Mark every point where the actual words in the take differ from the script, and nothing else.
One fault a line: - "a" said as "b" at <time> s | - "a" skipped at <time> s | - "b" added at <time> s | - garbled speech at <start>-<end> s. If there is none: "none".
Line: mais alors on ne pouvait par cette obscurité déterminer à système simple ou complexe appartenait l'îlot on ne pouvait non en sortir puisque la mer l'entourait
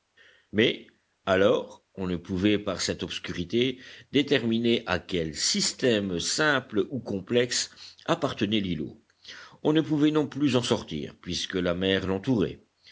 - "quel" added at 5.0 s
- "plus" added at 10.3 s